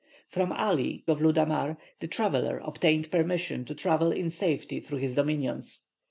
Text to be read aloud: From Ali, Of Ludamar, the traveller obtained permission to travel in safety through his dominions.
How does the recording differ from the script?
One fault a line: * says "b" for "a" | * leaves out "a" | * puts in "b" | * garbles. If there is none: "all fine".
all fine